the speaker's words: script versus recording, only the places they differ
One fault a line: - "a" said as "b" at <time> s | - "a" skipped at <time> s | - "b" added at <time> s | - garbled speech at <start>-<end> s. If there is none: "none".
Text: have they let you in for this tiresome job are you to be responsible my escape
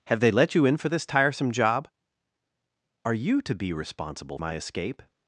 none